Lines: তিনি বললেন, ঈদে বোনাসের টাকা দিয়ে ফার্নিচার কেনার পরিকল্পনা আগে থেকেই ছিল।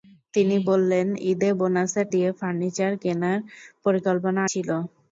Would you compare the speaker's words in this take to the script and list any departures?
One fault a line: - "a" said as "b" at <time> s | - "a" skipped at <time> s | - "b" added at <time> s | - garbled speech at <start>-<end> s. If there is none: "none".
- "টাকা" skipped at 2.1 s
- "আগে থেকেই" skipped at 4.4 s